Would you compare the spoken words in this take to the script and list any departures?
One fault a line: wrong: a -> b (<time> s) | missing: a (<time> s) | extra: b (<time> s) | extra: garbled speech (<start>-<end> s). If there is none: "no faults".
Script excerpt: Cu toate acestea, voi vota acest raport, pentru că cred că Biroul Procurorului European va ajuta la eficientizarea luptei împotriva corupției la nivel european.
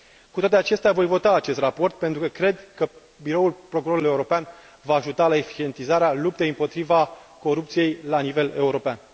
no faults